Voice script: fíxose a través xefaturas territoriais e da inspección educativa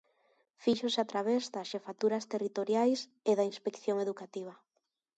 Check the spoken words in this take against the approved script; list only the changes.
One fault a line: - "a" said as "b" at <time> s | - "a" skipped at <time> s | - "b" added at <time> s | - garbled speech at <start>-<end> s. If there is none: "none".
- "das" added at 1.5 s